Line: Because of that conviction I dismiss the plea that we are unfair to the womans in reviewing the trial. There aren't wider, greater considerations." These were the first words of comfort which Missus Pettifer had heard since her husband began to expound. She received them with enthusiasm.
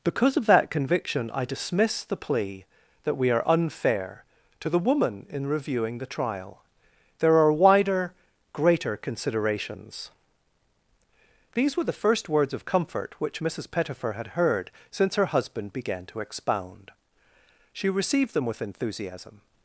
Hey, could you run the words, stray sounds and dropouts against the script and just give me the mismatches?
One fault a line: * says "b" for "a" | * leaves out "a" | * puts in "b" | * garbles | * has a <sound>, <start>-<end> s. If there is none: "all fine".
* says "woman" for "womans"
* says "are" for "aren't"